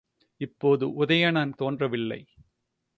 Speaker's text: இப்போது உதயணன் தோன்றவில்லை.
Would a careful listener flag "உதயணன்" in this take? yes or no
no